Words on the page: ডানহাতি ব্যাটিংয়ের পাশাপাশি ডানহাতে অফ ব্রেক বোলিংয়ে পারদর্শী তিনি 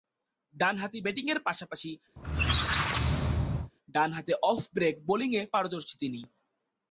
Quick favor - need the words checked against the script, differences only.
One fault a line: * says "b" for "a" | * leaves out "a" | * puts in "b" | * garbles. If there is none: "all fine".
all fine